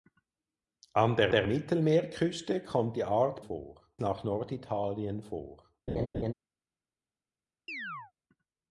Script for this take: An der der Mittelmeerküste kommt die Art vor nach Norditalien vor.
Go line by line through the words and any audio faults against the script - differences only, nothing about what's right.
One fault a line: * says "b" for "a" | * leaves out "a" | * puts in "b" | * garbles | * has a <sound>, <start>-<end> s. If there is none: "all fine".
* has a laugh, 5.9-6.3 s
* has a chirp, 7.7-8.1 s